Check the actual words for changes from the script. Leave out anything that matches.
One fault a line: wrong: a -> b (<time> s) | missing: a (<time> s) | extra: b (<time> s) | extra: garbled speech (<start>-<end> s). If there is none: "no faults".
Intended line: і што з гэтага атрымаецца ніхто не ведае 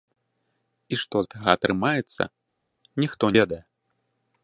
missing: з (1.2 s)
missing: не (3.3 s)